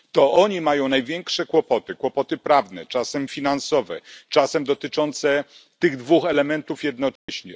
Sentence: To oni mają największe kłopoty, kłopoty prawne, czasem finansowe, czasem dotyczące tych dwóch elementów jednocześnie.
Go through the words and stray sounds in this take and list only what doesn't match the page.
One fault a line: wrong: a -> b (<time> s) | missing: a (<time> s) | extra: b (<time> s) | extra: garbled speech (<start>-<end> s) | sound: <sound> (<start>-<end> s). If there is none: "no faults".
sound: dropout (7.2-7.3 s)